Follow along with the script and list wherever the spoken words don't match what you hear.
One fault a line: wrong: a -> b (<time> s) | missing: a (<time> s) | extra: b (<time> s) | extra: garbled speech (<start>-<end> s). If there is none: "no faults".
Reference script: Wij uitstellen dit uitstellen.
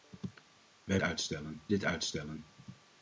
no faults